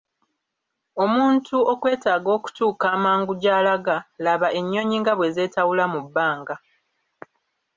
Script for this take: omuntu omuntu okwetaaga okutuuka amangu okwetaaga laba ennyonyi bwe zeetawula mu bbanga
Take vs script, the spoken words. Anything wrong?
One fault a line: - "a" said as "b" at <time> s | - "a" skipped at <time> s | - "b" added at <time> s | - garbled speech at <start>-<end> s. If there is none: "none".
- "omuntu" skipped at 1.6 s
- "okwetaaga" said as "gy'alaga" at 3.4 s
- "nga" added at 5.0 s